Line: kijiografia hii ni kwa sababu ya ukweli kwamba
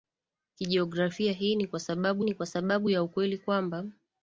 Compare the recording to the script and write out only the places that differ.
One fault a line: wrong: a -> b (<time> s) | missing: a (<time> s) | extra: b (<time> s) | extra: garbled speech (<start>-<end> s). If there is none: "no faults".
extra: ni kwa sababu (2.2 s)